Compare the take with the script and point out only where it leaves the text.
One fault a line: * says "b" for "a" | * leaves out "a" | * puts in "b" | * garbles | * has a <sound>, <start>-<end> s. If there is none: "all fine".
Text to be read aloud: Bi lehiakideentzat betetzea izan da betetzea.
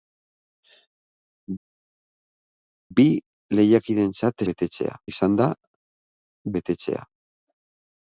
all fine